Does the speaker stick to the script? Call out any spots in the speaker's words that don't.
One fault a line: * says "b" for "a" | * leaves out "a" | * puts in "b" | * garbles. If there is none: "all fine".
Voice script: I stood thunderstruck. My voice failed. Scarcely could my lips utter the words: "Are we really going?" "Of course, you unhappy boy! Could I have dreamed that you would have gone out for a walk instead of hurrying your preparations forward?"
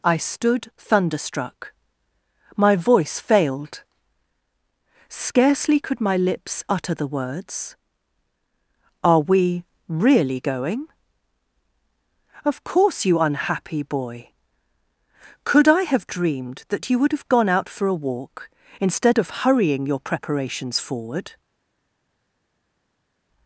all fine